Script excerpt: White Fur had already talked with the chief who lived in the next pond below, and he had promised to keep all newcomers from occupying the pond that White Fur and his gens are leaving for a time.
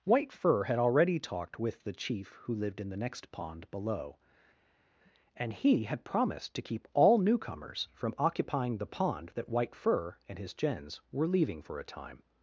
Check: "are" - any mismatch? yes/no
yes